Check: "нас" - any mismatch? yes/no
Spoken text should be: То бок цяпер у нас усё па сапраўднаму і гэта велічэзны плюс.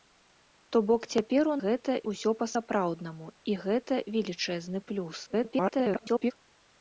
yes